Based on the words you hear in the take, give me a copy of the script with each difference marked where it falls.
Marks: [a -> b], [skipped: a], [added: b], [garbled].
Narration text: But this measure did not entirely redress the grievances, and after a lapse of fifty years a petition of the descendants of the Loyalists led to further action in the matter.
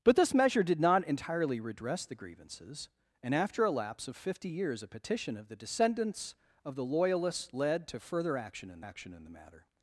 But this measure did not entirely redress the grievances, and after a lapse of fifty years a petition of the descendants of the Loyalists led to further action in [added: action in] the matter.